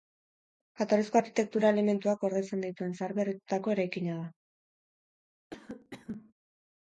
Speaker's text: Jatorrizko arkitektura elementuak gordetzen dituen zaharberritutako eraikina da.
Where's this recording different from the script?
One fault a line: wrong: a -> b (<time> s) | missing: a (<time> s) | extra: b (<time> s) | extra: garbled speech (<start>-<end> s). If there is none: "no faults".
no faults